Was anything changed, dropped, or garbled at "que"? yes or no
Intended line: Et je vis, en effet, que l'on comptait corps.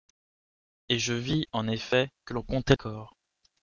no